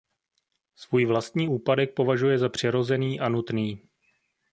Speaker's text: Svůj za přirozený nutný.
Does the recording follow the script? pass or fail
fail